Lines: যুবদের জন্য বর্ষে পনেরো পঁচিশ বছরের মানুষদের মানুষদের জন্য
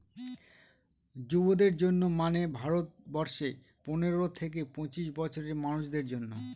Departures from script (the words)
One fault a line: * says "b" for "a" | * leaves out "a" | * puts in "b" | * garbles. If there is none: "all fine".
* puts in "মানে ভারত"
* puts in "থেকে"
* leaves out "মানুষদের"